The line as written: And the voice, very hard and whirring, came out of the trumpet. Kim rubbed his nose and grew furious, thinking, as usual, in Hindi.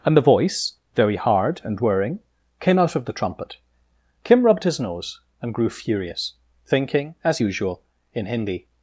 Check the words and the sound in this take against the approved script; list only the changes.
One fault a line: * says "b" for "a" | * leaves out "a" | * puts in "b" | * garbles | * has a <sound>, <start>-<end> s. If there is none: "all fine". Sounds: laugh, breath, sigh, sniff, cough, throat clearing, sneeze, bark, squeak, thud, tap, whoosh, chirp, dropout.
all fine